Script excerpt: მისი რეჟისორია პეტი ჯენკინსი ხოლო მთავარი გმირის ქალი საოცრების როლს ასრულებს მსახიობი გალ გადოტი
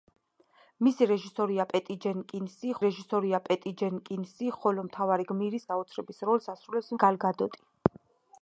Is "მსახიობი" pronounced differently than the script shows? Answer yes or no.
yes